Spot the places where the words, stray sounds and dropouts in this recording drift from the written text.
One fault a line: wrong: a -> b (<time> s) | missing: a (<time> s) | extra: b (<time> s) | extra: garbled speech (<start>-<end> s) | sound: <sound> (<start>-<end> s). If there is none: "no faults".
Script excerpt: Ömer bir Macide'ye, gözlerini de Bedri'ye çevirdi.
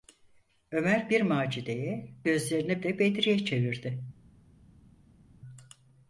no faults